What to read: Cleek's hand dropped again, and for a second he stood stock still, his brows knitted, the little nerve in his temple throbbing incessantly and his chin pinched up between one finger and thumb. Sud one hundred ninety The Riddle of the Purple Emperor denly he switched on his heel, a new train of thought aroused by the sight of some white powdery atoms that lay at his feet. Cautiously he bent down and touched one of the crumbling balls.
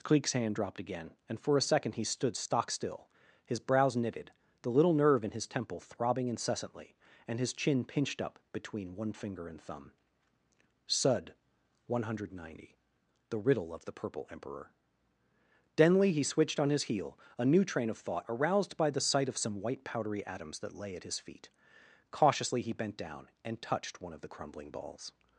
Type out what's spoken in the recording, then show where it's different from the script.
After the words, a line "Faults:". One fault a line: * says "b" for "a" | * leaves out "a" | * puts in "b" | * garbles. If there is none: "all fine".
Cleek's hand dropped again, and for a second he stood stock still, his brows knitted, the little nerve in his temple throbbing incessantly and his chin pinched up between one finger and thumb. Sud one hundred ninety The Riddle of the Purple Emperor denly he switched on his heel, a new train of thought aroused by the sight of some white powdery atoms that lay at his feet. Cautiously he bent down and touched one of the crumbling balls.
Faults:
all fine